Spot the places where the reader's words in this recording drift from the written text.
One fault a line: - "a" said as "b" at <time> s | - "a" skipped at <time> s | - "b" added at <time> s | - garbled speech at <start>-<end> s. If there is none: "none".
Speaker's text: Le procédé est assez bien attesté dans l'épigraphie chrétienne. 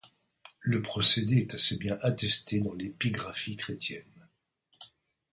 none